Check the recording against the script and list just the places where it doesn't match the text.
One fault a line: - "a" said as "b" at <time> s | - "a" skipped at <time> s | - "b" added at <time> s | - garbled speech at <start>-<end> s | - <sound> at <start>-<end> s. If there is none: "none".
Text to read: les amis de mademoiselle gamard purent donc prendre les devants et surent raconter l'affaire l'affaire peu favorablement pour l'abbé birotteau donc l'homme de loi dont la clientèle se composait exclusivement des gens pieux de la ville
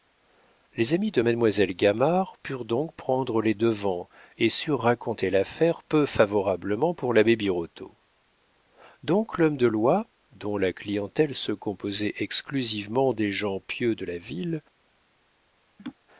- "l'affaire" skipped at 5.8 s
- laugh at 15.8-16.0 s